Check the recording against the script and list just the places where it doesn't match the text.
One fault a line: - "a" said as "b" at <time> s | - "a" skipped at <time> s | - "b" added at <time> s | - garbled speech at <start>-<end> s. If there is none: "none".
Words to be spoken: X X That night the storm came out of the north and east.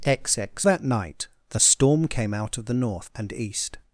none